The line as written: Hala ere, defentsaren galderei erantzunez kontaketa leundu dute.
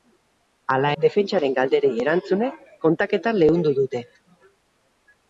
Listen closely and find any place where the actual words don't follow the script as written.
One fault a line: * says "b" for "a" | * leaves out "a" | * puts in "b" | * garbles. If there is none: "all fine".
* leaves out "ere"